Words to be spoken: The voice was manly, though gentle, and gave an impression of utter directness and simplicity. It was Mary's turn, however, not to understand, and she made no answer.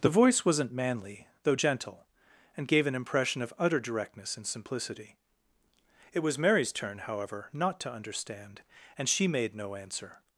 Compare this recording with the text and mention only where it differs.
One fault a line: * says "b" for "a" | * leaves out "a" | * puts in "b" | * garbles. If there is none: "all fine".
* says "wasn't" for "was"